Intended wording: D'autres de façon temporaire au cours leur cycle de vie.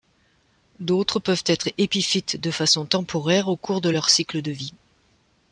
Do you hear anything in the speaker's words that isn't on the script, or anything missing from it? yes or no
yes